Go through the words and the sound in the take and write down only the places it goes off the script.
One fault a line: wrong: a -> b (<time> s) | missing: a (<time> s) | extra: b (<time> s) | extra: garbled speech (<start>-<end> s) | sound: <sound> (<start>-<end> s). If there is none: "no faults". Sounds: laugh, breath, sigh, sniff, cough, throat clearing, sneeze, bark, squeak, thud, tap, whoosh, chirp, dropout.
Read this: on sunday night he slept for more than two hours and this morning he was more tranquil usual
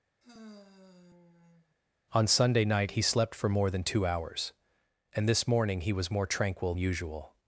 sound: sigh (0.2-1.7 s)